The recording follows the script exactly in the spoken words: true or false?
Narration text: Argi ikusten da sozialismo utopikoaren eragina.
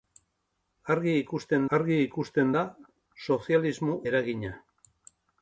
false